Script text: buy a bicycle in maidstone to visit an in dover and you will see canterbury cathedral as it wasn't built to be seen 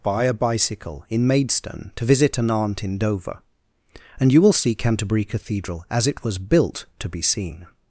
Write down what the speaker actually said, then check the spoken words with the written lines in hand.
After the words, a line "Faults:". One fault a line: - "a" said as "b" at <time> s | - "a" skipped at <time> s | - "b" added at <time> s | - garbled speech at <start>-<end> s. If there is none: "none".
buy a bicycle in maidstone to visit an aunt in dover and you will see canterbury cathedral as it was built to be seen
Faults:
- "aunt" added at 2.5 s
- "wasn't" said as "was" at 6.2 s